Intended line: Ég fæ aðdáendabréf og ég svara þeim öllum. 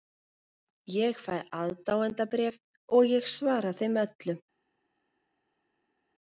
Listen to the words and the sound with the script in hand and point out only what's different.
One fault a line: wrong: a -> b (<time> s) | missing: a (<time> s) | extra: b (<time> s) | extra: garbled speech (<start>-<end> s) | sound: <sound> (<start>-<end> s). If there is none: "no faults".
no faults